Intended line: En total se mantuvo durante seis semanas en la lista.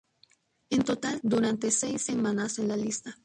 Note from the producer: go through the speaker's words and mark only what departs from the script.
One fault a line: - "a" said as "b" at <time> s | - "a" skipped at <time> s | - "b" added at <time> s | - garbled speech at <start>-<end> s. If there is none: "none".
- "se mantuvo" skipped at 1.2 s